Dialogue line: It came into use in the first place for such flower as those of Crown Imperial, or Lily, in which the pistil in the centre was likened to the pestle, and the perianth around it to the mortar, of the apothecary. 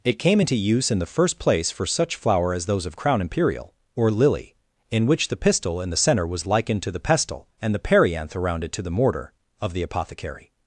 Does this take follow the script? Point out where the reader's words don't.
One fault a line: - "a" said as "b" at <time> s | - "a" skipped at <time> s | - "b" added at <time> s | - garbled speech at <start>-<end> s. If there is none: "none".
none